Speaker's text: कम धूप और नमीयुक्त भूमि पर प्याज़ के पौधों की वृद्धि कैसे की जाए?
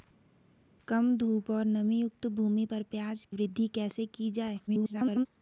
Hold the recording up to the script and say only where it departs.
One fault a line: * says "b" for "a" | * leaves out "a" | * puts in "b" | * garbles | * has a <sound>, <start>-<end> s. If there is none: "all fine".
* leaves out "के पौधों की"
* garbles